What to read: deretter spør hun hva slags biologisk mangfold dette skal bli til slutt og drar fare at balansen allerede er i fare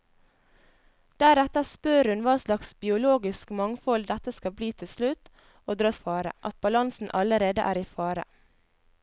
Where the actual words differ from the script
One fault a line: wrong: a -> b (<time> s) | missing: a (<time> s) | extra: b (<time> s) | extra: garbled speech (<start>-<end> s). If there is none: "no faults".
no faults